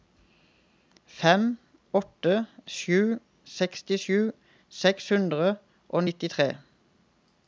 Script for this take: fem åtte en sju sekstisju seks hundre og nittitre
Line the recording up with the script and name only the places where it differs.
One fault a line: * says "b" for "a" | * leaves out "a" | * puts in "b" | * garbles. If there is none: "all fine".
* leaves out "en"